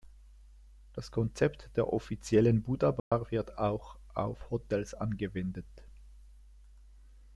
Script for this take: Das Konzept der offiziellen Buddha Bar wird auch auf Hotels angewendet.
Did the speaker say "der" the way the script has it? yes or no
yes